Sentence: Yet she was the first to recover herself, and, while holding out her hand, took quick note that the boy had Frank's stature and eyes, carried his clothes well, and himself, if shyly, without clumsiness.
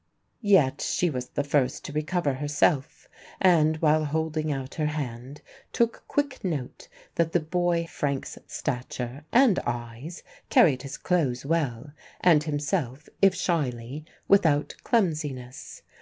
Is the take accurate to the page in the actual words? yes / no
no